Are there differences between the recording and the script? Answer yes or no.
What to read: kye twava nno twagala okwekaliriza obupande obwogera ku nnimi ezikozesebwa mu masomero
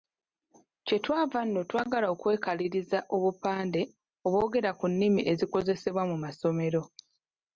no